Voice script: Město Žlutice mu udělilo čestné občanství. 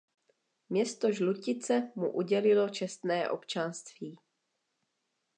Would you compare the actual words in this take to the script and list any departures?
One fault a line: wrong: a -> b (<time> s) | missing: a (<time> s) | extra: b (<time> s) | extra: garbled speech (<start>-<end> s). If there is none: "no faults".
no faults